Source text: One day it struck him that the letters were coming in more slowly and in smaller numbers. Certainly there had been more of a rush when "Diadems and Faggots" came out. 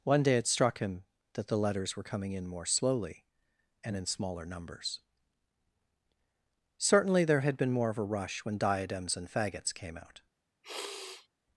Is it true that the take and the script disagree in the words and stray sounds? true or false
true